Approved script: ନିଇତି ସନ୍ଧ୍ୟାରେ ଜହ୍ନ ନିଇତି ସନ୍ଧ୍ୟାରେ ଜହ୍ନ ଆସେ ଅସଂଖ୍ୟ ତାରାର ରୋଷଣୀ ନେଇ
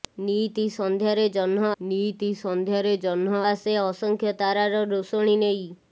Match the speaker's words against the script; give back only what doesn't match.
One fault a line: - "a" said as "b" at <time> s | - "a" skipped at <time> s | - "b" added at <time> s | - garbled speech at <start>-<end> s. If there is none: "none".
none